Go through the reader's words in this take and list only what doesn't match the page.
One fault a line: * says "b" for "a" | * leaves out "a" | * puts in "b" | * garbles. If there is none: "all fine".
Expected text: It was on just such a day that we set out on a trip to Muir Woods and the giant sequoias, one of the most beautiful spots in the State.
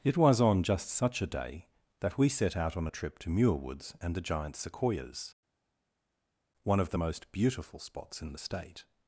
all fine